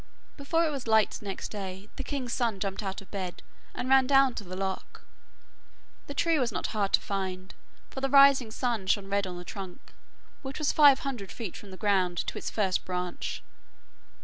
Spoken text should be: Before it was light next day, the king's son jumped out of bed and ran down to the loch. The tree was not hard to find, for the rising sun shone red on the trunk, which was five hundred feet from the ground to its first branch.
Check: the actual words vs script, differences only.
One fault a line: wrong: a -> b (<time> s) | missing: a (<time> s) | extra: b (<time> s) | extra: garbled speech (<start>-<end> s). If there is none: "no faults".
no faults